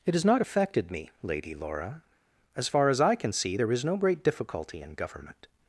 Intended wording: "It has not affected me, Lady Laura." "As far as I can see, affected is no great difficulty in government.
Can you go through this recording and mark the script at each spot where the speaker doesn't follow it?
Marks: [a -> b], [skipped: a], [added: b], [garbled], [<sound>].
"It has not affected me, Lady Laura." "As far as I can see, [affected -> there] is no great difficulty in government.